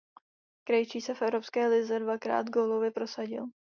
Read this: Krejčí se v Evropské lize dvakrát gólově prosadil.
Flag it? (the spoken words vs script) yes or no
no